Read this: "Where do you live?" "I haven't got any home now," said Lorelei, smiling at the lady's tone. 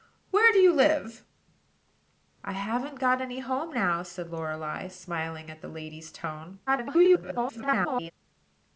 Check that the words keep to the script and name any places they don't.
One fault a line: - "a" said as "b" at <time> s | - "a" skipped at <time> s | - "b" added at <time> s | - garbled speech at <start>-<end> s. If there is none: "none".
- garbled speech at 6.7-8.1 s